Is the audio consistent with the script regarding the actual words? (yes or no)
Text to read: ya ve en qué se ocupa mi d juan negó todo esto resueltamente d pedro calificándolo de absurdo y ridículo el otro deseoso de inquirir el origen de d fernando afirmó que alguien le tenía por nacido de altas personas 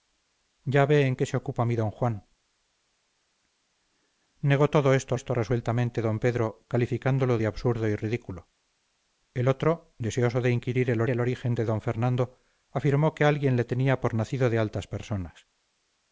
no